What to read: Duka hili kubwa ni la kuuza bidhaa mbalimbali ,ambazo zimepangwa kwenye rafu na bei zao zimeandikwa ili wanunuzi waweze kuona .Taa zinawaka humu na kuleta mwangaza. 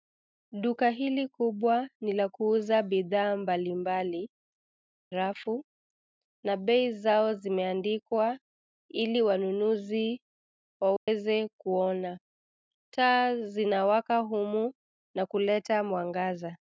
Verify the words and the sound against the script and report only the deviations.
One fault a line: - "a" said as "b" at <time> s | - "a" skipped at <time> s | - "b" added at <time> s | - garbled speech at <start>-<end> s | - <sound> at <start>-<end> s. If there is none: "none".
- "ambazo zimepangwa kwenye" skipped at 4.3 s
- dropout at 11.0-11.1 s